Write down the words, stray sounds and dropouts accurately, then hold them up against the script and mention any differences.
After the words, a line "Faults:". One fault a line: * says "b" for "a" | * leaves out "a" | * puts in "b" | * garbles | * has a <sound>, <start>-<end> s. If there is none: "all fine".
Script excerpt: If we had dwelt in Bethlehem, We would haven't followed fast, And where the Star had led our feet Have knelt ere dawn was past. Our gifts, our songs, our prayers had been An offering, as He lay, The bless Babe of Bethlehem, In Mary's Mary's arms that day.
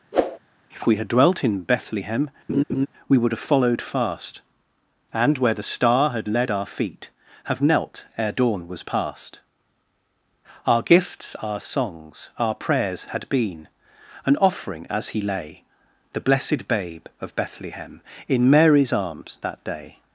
If we had dwelt in Bethlehem, We would have followed fast, And where the Star had led our feet Have knelt ere dawn was past. Our gifts, our songs, our prayers had been An offering, as He lay, The blessed Babe of Bethlehem, In Mary's arms that day.
Faults:
* has a whoosh, 0.1-0.4 s
* has a laugh, 2.5-2.9 s
* says "have" for "haven't"
* says "blessed" for "bless"
* leaves out "Mary's"